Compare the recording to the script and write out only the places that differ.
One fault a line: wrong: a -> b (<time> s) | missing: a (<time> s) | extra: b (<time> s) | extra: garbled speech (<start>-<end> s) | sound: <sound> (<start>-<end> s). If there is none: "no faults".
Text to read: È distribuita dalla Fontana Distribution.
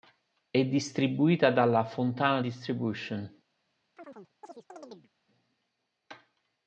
sound: chirp (4.0-5.1 s)